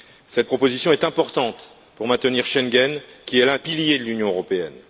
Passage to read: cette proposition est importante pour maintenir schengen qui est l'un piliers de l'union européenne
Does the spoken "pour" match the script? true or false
true